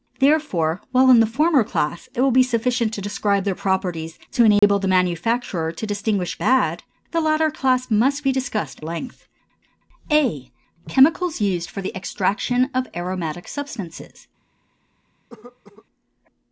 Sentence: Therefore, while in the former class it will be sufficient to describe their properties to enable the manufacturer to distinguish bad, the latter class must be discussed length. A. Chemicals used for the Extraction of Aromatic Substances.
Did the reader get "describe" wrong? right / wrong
right